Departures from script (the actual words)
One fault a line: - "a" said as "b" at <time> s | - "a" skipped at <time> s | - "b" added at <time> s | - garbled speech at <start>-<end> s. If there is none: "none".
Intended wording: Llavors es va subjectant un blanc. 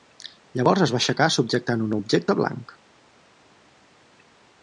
- "aixecar" added at 1.0 s
- "objecte" added at 2.0 s